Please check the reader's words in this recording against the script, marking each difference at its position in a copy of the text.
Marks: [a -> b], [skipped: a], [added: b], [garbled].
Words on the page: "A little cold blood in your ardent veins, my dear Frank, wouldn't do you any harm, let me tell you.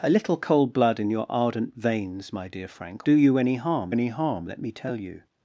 "A little cold blood in your ardent veins, my dear Frank, [skipped: wouldn't] do you any harm, [added: any harm] let me tell you.